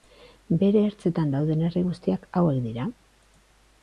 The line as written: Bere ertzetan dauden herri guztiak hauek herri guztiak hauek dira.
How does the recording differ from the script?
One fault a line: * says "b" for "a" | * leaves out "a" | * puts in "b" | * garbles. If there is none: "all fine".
* leaves out "herri guztiak hauek"